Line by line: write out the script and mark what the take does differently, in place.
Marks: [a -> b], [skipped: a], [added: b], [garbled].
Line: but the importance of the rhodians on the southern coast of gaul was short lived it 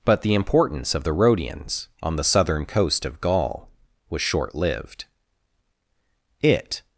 but the importance of the rhodians on the southern coast of gaul was short lived it